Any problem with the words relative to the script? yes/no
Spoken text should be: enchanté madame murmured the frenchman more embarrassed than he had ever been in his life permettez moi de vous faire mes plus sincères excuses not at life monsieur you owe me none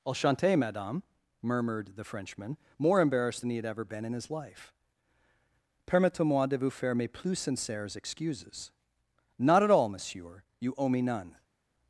yes